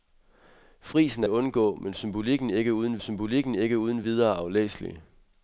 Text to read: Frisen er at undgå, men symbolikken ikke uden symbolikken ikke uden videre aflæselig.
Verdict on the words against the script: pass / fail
pass